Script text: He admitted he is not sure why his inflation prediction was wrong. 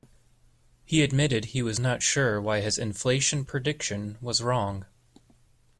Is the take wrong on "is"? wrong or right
wrong